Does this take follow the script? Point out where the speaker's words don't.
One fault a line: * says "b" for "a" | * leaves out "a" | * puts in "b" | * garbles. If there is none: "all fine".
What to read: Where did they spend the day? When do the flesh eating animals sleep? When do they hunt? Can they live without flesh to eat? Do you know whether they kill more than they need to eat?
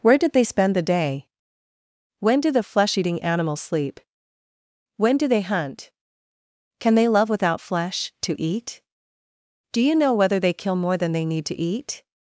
* says "love" for "live"